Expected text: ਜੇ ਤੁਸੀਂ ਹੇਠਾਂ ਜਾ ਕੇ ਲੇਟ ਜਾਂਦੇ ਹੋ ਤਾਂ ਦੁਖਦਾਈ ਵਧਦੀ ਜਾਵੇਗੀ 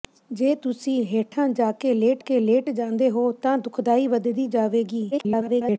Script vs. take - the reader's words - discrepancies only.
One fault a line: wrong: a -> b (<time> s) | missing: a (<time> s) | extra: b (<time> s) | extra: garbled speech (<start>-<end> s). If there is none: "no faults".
extra: ਕੇ ਲੇਟ (2.2 s)
extra: garbled speech (5.1-5.8 s)